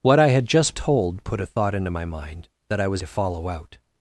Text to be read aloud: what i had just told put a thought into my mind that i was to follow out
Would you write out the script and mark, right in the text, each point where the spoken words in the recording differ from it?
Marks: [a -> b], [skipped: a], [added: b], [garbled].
what i had just told put a thought into my mind that i was to follow out